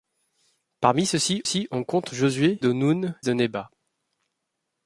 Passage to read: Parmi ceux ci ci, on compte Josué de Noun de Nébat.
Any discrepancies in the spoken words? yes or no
no